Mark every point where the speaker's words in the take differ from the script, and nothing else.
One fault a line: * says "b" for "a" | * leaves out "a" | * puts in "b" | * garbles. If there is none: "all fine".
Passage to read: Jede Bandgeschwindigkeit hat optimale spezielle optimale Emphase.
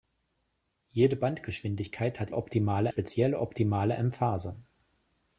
all fine